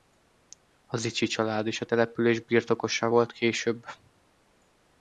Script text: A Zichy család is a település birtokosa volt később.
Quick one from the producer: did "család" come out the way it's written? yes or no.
yes